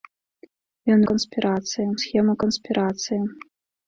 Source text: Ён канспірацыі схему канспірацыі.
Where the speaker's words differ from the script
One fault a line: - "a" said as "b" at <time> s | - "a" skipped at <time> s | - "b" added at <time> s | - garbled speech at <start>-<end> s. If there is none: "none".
none